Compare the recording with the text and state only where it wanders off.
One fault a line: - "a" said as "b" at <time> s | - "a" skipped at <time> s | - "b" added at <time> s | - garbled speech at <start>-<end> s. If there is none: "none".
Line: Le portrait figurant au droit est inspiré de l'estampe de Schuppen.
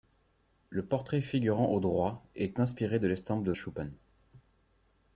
none